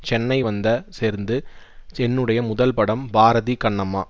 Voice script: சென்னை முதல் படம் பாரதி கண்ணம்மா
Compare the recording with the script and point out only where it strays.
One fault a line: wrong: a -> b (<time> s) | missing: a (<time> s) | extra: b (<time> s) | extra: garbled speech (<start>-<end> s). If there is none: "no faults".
extra: வந்த சேர்ந்து என்னுடைய (0.4 s)